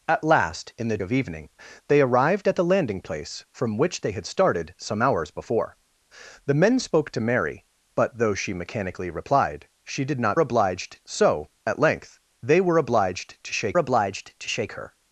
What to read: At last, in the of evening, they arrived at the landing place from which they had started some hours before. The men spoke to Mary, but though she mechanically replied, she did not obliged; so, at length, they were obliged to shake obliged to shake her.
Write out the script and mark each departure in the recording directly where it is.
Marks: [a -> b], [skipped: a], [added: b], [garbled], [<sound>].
At last, in the of evening, they arrived at the landing place from which they had started some hours before. The men spoke to Mary, but though she mechanically replied, she did not obliged; so, at length, they were obliged to shake obliged to shake her.